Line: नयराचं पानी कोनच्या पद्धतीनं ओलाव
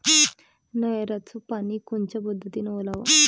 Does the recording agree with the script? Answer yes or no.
yes